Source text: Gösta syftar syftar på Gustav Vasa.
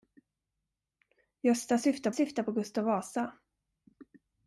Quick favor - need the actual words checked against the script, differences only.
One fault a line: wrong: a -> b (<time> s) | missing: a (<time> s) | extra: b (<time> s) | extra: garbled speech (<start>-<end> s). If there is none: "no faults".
no faults